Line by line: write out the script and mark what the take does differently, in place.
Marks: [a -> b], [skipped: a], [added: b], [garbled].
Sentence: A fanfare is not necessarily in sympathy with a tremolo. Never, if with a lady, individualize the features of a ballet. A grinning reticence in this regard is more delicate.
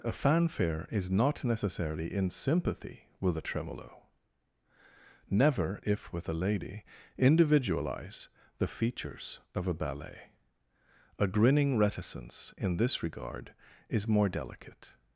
A fanfare is not necessarily in sympathy with a tremolo. Never, if with a lady, individualize the features of a ballet. A grinning reticence in this regard is more delicate.